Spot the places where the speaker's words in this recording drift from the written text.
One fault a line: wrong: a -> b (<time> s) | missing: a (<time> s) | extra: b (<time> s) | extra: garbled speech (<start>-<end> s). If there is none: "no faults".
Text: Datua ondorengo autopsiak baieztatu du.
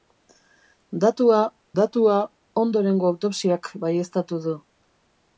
extra: datua (1.8 s)